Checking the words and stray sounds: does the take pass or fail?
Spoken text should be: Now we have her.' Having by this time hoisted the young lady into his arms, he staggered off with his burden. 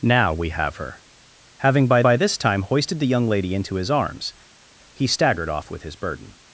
fail